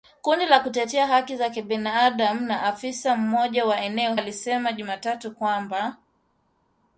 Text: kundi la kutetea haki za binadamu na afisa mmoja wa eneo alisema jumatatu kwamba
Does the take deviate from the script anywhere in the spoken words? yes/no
no